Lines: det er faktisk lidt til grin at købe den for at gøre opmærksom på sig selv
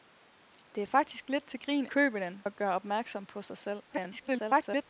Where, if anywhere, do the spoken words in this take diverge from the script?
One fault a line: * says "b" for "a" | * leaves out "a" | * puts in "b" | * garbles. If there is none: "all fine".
* leaves out "at"
* leaves out "for"
* garbles